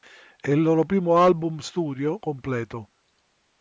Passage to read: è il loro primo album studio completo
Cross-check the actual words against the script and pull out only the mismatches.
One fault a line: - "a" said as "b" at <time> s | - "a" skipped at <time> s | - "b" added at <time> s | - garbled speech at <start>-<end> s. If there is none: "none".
none